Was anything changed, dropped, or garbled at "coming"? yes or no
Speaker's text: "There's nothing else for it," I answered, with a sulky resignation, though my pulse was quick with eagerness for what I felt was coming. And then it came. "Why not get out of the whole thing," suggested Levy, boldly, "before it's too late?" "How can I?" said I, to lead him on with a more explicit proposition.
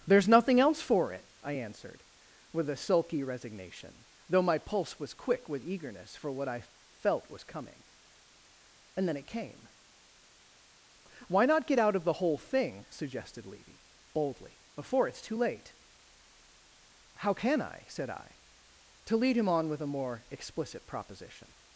no